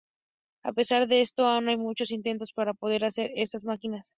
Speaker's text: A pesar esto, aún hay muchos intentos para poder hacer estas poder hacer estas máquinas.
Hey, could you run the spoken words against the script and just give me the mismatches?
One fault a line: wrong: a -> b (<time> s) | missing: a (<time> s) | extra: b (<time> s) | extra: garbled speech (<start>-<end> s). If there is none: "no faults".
extra: de (1.1 s)
missing: poder hacer estas (3.6 s)